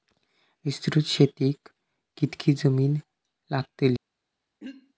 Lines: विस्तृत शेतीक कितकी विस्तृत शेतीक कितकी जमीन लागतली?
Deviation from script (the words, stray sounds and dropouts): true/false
true